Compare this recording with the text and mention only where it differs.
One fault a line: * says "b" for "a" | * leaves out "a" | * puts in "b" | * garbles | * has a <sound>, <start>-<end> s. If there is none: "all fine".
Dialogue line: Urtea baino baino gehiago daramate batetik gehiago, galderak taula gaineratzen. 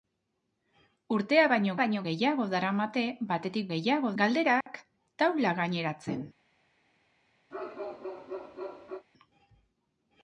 * has a dropout, 4.6-4.7 s
* has a bark, 7.5-9.1 s